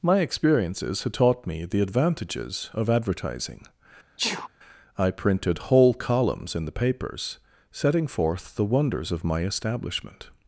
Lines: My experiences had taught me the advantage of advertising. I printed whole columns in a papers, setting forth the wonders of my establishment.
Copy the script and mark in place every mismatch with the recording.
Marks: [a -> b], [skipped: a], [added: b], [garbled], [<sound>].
My experiences had taught me the [advantage -> advantages] of advertising. [sneeze] I printed whole columns in [a -> the] papers, setting forth the wonders of my establishment.